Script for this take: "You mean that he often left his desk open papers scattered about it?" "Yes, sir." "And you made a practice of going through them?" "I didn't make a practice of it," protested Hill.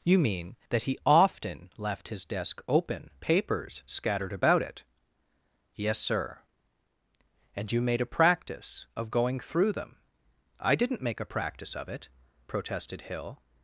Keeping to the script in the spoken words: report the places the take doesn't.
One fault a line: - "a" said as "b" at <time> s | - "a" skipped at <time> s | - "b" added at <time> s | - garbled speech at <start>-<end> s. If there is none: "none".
none